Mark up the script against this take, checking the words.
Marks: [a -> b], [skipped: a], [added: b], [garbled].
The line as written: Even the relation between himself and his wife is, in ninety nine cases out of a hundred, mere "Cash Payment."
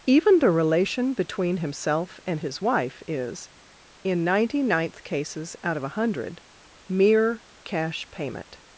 Even the relation between himself and his wife is, in ninety [nine -> ninth] cases out of a hundred, mere "Cash Payment."